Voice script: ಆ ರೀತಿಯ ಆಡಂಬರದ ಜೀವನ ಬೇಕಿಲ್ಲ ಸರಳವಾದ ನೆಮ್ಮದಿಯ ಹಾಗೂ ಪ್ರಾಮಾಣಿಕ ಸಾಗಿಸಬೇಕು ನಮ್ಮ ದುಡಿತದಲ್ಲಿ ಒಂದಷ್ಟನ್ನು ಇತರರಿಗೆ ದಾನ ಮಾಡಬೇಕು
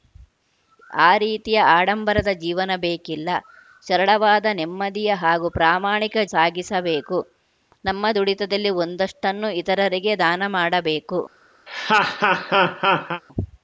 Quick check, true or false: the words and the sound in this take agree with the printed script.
false